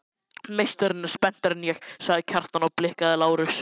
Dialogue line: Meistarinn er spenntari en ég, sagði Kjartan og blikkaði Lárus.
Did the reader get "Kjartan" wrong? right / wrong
right